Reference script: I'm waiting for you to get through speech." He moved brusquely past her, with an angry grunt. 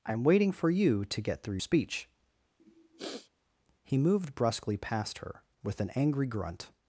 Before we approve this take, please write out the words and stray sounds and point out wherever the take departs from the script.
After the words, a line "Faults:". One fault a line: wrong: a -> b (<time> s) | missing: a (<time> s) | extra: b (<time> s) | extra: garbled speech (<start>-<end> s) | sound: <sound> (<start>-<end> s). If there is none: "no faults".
I'm waiting for you to get through speech." He moved brusquely past her, with an angry grunt.
Faults:
sound: sniff (2.6-3.3 s)